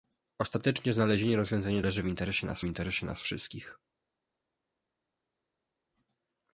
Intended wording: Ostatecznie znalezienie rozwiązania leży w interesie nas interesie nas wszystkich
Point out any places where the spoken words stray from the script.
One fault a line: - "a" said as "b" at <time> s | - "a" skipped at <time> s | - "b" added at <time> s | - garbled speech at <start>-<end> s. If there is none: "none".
none